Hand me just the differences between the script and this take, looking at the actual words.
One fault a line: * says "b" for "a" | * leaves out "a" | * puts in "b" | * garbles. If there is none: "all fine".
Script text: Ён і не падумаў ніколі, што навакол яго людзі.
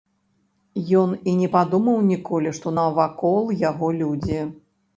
all fine